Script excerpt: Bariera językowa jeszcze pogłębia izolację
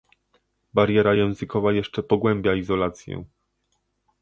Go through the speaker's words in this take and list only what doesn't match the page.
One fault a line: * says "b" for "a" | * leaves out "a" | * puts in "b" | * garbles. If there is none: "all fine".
all fine